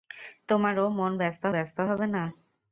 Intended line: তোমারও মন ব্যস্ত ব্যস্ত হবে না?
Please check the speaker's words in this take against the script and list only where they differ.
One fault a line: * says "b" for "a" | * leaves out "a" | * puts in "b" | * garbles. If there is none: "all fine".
all fine